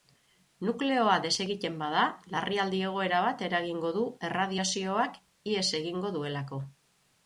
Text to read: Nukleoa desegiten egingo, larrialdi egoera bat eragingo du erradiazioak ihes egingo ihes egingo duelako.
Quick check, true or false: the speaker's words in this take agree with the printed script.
false